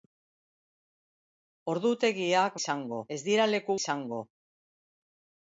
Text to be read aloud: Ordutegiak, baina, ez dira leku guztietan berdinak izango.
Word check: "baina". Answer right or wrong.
wrong